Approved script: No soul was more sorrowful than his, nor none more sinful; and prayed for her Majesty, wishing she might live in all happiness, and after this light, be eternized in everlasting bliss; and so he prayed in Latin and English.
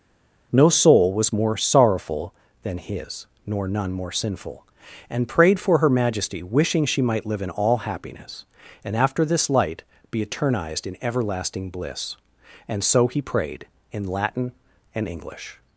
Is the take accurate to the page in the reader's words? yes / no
yes